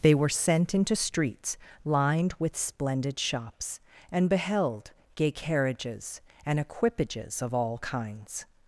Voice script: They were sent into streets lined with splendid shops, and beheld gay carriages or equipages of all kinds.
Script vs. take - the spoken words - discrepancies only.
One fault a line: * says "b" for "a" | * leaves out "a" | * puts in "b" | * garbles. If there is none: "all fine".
* says "and" for "or"